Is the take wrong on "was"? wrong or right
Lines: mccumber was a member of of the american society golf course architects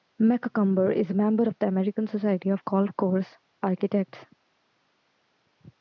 wrong